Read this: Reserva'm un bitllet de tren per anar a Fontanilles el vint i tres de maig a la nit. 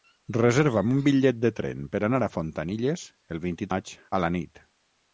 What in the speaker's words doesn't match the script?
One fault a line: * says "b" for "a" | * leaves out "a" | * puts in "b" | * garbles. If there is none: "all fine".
* leaves out "tres de"